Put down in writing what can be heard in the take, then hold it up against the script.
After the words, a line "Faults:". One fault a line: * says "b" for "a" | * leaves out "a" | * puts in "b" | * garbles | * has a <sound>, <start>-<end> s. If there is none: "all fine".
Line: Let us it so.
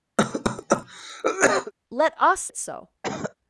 Let us it so.
Faults:
* has a cough, 0.2-1.7 s
* has a cough, 3.0-3.3 s